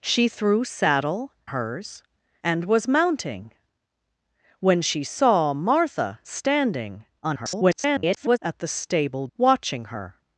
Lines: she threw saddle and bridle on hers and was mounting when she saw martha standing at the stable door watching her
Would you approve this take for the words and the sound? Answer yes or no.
no